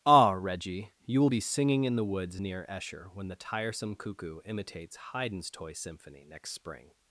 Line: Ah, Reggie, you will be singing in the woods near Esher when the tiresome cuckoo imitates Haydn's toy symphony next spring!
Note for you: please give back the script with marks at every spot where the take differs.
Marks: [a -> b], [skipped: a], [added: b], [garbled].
Ah, Reggie, you will be singing in the woods near Esher when the tiresome cuckoo imitates Haydn's toy symphony next spring!